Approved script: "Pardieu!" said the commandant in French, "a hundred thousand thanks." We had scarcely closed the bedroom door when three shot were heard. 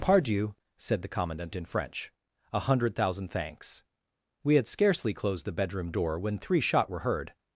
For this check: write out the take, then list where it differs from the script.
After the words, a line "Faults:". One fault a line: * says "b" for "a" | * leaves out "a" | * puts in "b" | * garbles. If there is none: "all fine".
"Pardieu!" said the commandant in French, "a hundred thousand thanks." We had scarcely closed the bedroom door when three shot were heard.
Faults:
all fine